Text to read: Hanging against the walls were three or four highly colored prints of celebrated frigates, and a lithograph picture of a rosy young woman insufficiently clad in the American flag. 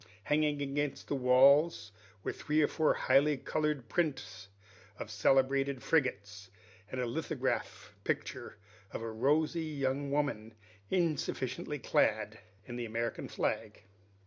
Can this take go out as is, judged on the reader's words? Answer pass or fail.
pass